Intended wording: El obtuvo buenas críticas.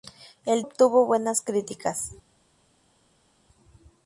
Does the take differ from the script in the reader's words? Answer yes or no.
no